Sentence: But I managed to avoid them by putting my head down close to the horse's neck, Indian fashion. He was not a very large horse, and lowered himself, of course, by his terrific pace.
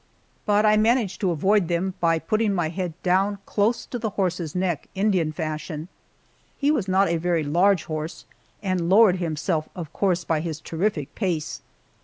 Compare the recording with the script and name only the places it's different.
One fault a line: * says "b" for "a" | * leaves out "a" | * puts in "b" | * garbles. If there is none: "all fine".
all fine